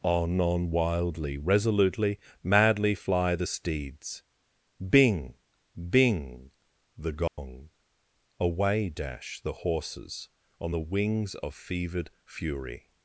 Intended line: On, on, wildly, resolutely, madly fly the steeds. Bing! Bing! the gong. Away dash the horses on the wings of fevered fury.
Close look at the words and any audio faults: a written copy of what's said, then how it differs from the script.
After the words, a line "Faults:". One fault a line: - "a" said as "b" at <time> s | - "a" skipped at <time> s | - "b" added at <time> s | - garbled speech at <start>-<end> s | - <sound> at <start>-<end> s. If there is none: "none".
On, on, wildly, resolutely, madly fly the steeds. Bing! Bing! the gong. Away dash the horses on the wings of fevered fury.
Faults:
- dropout at 7.3-7.4 s